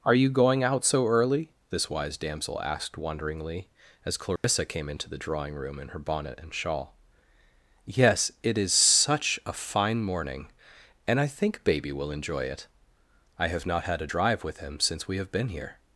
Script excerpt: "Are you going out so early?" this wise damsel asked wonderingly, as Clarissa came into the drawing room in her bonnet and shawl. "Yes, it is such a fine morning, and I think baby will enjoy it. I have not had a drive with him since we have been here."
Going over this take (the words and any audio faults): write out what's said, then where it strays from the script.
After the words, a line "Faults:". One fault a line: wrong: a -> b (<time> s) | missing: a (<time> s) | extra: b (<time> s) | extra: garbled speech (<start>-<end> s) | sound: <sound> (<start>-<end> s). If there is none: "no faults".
"Are you going out so early?" this wise damsel asked wonderingly, as Clarissa came into the drawing room in her bonnet and shawl. "Yes, it is such a fine morning, and I think baby will enjoy it. I have not had a drive with him since we have been here."
Faults:
sound: dropout (4.4-4.4 s)